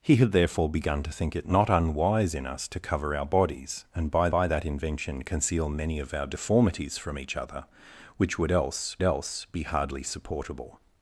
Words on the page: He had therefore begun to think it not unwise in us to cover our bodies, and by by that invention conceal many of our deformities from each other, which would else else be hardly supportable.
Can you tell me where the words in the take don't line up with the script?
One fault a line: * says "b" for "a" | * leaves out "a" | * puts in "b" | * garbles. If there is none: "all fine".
all fine